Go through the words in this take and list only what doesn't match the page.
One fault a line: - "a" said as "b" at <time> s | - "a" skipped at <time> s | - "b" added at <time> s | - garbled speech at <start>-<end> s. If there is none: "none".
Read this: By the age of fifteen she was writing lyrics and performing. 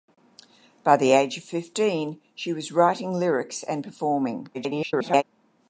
- garbled speech at 4.5-5.2 s